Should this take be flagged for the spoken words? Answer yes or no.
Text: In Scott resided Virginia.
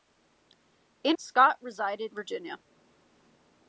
no